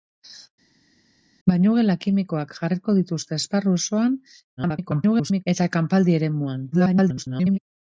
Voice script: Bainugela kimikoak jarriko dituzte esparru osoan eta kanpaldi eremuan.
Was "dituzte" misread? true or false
false